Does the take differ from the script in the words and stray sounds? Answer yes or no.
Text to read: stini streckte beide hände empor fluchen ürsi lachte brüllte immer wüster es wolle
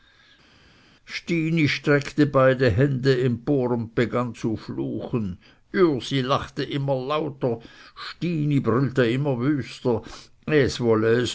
yes